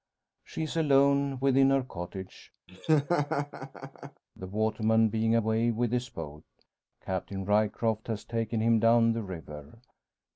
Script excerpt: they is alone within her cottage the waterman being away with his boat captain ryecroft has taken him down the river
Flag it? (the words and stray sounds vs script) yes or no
yes